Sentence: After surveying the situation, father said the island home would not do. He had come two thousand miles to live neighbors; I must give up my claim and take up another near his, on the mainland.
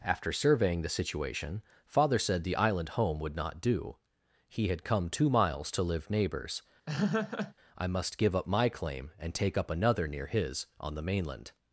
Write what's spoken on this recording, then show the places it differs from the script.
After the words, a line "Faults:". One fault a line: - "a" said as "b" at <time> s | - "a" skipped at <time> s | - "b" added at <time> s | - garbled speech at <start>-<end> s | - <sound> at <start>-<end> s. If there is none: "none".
After surveying the situation, father said the island home would not do. He had come two miles to live neighbors; I must give up my claim and take up another near his, on the mainland.
Faults:
- "thousand" skipped at 5.3 s
- laugh at 6.9-7.5 s